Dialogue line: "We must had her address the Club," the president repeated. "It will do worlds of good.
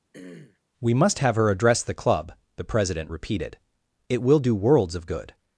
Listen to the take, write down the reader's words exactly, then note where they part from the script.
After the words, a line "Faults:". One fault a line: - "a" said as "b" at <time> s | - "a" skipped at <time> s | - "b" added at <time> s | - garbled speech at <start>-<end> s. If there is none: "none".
"We must have her address the Club," the president repeated. "It will do worlds of good.
Faults:
- "had" said as "have" at 1.2 s